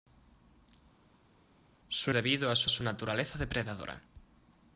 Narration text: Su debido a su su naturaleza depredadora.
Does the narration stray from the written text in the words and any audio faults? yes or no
no